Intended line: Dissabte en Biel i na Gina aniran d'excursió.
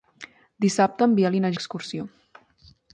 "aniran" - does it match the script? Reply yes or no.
no